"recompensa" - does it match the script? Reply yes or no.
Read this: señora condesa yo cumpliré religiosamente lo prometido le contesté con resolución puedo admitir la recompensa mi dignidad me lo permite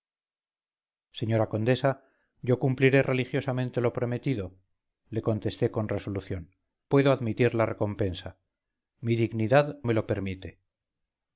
yes